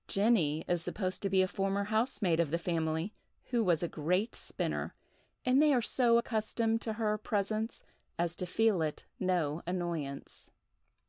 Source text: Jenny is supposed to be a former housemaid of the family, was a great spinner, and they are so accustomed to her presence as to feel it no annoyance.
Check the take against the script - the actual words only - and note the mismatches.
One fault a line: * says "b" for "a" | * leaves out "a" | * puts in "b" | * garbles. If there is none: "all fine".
* puts in "who"